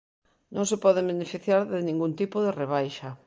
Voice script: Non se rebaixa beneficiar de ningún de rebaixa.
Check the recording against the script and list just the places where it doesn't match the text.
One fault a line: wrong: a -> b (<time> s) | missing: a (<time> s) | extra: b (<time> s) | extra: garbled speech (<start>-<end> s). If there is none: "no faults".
wrong: rebaixa -> poden (0.8 s)
extra: tipo (2.2 s)